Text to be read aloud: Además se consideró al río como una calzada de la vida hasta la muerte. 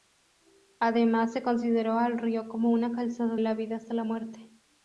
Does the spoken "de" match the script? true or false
false